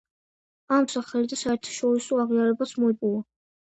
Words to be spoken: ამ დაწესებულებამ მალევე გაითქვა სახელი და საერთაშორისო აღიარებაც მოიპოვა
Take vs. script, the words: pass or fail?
fail